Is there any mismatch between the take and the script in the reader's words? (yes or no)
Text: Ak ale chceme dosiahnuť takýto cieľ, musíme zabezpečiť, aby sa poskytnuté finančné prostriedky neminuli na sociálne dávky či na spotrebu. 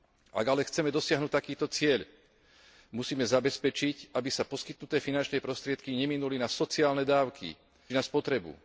yes